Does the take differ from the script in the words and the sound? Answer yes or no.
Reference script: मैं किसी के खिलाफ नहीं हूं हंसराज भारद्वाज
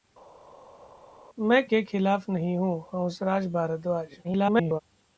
yes